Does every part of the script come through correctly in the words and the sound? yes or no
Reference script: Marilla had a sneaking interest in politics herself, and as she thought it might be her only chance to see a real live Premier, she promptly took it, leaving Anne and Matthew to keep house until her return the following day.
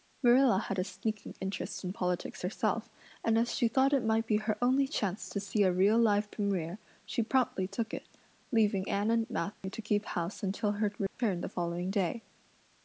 no